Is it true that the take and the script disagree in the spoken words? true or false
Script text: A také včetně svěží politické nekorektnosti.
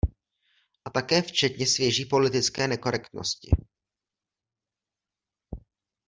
false